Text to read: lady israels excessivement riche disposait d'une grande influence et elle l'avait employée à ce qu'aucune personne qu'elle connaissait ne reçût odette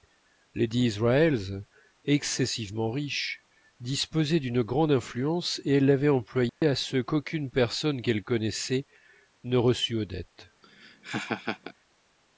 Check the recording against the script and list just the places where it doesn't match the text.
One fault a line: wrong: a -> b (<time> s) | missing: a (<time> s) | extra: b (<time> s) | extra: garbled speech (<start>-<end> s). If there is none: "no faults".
no faults